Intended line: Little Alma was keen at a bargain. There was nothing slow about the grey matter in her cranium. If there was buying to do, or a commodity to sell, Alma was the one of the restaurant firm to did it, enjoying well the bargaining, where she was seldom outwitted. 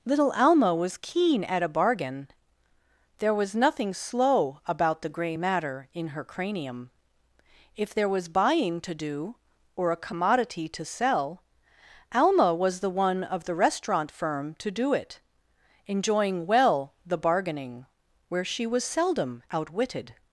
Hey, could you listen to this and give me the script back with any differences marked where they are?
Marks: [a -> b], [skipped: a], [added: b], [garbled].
Little Alma was keen at a bargain. There was nothing slow about the grey matter in her cranium. If there was buying to do, or a commodity to sell, Alma was the one of the restaurant firm to [did -> do] it, enjoying well the bargaining, where she was seldom outwitted.